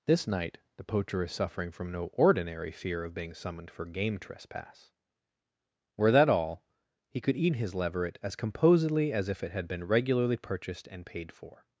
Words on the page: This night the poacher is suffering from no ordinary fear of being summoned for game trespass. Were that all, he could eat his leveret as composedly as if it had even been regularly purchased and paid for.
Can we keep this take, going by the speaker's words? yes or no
no